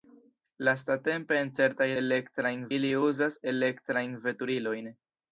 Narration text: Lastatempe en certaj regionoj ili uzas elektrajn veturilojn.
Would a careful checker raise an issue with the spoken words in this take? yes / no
yes